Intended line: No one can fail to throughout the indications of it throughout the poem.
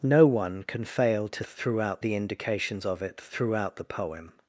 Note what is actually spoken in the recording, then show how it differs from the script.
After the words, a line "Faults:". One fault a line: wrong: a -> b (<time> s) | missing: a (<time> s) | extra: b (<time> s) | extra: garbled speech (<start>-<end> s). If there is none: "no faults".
No one can fail to throughout the indications of it throughout the poem.
Faults:
no faults